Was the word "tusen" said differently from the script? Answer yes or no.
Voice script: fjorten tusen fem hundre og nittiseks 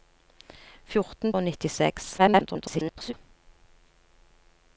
yes